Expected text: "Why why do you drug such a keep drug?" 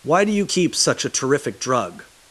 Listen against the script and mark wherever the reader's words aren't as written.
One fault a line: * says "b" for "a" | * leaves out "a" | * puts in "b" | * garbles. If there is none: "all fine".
* leaves out "why"
* says "keep" for "drug"
* says "terrific" for "keep"